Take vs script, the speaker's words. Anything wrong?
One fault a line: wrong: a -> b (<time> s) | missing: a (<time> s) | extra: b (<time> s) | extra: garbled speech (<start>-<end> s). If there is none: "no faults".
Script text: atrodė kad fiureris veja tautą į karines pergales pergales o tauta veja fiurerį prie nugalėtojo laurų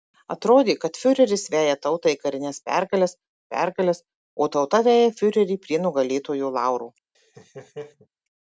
no faults